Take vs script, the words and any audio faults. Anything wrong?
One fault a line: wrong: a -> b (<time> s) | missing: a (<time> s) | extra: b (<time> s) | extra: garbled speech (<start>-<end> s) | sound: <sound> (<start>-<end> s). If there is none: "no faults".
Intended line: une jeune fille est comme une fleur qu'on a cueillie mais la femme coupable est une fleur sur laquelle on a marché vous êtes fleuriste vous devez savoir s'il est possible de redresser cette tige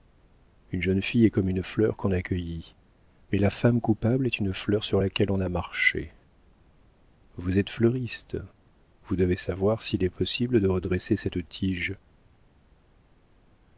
no faults